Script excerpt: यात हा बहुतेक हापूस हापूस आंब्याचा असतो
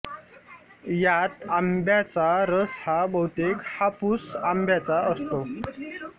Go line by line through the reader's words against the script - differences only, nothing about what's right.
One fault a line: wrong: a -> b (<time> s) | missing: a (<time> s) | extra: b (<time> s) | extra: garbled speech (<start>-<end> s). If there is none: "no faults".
extra: आंब्याचा रस (1.5 s)
missing: हापूस (4.3 s)